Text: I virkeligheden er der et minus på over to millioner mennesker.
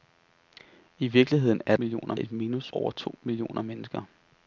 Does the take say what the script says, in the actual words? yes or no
no